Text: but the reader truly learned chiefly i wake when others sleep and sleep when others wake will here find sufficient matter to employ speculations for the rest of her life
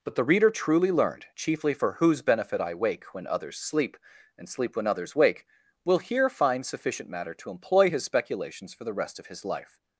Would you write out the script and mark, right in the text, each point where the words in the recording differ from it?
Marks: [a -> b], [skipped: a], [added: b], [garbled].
but the reader truly learned chiefly [added: for whose benefit] i wake when others sleep and sleep when others wake will here find sufficient matter to employ [added: his] speculations for the rest of [her -> his] life